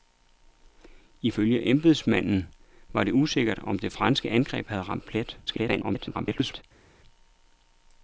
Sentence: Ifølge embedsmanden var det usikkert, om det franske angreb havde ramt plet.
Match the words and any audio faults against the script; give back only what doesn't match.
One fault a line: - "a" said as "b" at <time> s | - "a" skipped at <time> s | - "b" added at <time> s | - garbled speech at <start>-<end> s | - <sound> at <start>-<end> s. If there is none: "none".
- garbled speech at 5.5-6.6 s